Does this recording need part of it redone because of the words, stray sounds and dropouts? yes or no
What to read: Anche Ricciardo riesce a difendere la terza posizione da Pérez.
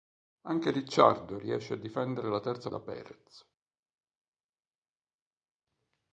yes